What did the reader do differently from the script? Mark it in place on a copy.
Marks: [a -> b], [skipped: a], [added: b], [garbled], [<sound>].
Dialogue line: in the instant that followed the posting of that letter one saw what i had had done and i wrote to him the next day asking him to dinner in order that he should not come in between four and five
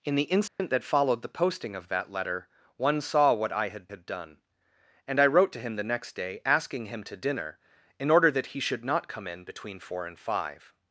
in the instant [dropout] that followed the posting of that letter one saw what i had had done and i wrote to him the next day asking him to dinner in order that he should not come in between four and five